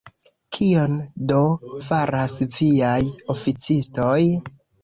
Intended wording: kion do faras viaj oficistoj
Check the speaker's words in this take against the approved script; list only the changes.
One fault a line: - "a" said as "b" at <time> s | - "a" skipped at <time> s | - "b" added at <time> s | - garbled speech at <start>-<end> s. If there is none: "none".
none